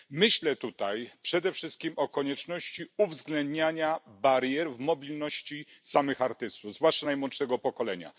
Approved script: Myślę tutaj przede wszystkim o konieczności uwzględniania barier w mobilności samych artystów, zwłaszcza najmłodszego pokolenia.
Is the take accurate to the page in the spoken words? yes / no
yes